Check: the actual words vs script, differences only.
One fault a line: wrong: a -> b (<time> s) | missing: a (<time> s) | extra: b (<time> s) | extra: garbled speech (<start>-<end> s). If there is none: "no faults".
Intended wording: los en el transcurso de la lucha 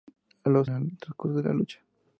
no faults